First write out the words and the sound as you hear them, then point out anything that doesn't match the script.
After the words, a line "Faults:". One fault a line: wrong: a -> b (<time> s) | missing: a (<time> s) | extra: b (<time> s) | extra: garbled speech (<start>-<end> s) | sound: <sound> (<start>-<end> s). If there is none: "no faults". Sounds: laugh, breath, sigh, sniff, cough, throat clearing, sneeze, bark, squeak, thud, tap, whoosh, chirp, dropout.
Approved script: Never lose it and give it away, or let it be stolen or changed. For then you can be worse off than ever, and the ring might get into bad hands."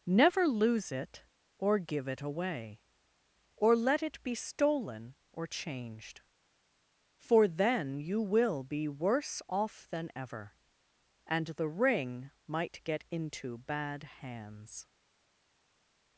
Never lose it or give it away, or let it be stolen or changed. For then you will be worse off than ever, and the ring might get into bad hands."
Faults:
wrong: and -> or (1.6 s)
wrong: can -> will (8.2 s)